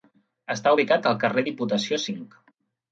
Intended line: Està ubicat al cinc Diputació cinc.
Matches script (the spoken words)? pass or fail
fail